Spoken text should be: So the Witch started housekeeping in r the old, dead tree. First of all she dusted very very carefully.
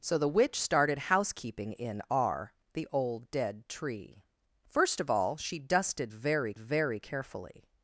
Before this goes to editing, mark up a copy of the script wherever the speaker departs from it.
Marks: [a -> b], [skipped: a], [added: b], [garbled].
So the Witch started housekeeping in r the old, dead tree. First of all she dusted very very carefully.